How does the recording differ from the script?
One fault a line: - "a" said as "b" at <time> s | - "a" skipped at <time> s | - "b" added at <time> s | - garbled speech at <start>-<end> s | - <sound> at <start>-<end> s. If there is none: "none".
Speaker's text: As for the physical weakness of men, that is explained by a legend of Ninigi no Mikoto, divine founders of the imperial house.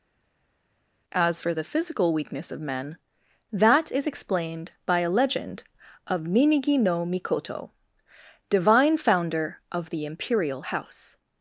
- "founders" said as "founder" at 9.0 s